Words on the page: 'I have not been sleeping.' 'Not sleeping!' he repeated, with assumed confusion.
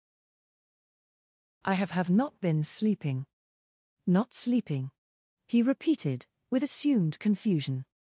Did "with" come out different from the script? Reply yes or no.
no